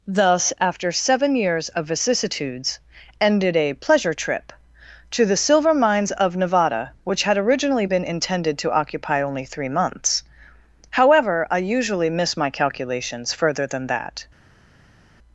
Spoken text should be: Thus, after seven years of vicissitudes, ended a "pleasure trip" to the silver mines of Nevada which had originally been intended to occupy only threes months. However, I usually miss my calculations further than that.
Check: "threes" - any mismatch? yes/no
yes